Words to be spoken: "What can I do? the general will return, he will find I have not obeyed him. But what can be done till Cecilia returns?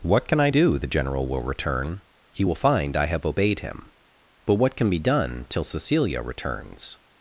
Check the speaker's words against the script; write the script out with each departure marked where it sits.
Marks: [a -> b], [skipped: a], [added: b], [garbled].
"What can I do? the general will return, he will find I have [skipped: not] obeyed him. But what can be done till Cecilia returns?